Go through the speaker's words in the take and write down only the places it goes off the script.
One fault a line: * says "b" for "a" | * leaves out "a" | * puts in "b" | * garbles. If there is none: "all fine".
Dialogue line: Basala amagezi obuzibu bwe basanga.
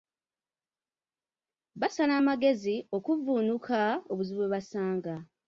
* puts in "okuvvuunuka"